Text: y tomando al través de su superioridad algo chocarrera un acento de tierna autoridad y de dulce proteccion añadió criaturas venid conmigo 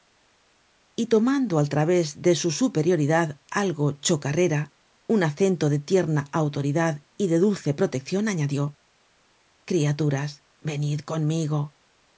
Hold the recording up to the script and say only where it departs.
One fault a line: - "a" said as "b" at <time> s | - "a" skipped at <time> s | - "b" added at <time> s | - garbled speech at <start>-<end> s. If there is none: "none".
none